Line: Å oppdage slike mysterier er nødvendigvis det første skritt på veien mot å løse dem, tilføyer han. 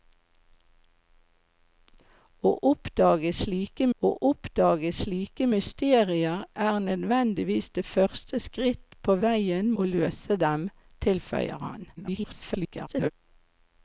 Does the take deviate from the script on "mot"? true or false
true